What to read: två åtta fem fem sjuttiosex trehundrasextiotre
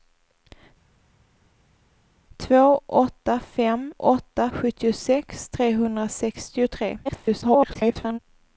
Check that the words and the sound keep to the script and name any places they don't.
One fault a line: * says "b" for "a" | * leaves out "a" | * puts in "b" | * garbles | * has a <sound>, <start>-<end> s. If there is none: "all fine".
* says "åtta" for "fem"
* garbles